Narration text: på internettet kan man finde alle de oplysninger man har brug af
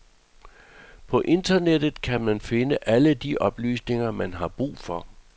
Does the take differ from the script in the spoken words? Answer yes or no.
yes